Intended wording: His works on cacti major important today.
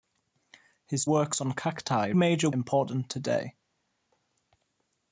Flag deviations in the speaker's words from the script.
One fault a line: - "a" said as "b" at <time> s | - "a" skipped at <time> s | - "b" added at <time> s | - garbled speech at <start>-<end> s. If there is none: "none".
none